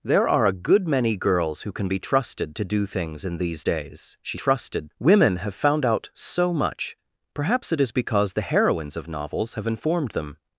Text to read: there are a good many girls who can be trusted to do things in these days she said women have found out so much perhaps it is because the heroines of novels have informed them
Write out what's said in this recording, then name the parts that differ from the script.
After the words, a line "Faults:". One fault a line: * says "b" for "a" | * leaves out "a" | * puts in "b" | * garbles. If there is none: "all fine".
there are a good many girls who can be trusted to do things in these days she trusted women have found out so much perhaps it is because the heroines of novels have informed them
Faults:
* says "trusted" for "said"